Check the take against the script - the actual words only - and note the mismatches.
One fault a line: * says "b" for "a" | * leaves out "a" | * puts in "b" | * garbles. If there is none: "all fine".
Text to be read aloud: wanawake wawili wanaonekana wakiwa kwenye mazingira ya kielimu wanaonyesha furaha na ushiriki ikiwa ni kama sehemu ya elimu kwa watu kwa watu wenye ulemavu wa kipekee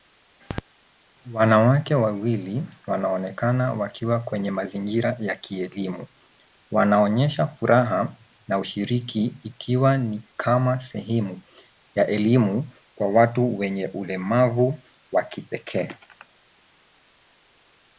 * leaves out "kwa watu"